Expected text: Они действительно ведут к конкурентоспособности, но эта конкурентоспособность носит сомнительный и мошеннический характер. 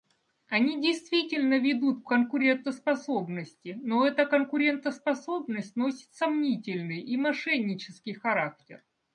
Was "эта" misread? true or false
false